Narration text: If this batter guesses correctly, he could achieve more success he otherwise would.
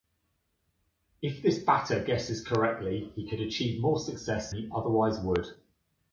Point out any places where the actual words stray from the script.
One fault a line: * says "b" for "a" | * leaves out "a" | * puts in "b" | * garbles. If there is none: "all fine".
all fine